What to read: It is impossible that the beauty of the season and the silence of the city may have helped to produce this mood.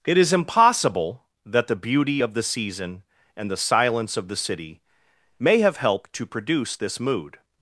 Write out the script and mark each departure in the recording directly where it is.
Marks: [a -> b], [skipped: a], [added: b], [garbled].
It is impossible that the beauty of the season and the silence of the city may have helped to produce this mood.